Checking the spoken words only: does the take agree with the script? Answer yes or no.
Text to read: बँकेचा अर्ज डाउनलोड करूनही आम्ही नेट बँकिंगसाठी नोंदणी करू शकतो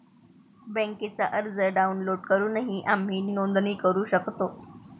no